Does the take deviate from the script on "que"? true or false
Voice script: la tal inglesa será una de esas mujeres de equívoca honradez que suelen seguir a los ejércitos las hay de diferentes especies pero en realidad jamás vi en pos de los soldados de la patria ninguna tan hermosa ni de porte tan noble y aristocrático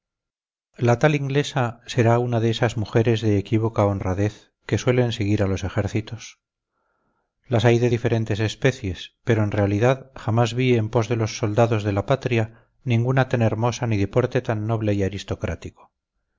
false